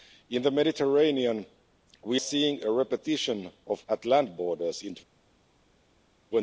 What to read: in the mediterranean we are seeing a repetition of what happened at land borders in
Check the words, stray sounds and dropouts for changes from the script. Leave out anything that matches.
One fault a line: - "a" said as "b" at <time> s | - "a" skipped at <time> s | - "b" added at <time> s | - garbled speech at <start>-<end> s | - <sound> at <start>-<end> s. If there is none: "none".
- "are" skipped at 2.2 s
- "what happened" skipped at 3.8 s